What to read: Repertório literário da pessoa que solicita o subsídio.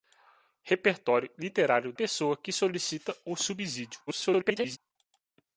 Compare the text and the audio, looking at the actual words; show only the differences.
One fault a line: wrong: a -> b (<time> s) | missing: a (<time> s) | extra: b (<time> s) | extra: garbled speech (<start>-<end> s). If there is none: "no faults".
missing: da (1.9 s)
extra: garbled speech (4.1-4.8 s)